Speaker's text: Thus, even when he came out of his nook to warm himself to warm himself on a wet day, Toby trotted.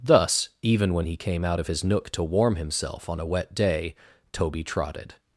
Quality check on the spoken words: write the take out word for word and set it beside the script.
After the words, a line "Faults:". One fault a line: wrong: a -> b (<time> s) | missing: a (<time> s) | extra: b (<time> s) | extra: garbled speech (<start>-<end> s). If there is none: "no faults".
Thus, even when he came out of his nook to warm himself on a wet day, Toby trotted.
Faults:
missing: to warm himself (3.1 s)